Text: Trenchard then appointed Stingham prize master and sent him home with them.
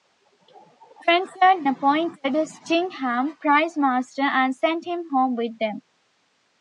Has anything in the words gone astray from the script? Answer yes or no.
yes